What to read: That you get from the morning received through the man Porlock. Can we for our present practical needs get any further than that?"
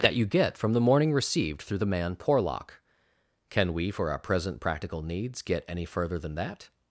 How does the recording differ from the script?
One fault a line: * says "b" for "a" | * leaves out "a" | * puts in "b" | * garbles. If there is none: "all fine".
all fine